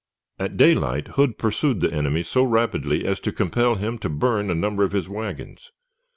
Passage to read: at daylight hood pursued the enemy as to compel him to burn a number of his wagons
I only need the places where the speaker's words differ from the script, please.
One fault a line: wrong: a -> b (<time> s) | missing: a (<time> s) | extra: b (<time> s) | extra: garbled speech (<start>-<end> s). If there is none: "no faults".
extra: so rapidly (2.2 s)